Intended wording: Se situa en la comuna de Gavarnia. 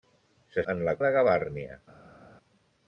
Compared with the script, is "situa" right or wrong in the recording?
wrong